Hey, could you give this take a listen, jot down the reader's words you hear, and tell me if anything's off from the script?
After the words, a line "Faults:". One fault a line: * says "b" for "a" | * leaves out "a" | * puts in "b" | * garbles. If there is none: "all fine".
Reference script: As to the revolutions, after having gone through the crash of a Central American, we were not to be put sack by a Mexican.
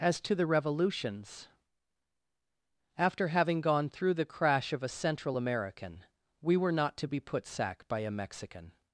As to the revolutions, after having gone through the crash of a Central American, we were not to be put sack by a Mexican.
Faults:
all fine